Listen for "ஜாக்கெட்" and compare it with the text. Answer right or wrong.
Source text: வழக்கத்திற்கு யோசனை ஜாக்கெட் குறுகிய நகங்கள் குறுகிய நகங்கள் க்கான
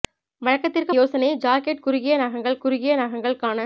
right